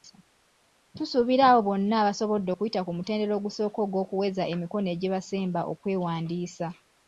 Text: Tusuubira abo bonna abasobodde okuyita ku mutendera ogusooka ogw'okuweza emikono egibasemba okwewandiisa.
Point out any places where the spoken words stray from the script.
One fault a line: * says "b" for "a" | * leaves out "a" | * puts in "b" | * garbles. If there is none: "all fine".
all fine